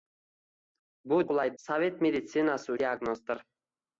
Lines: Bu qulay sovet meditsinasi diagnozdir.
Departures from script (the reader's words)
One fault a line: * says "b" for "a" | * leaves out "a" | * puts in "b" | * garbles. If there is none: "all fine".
all fine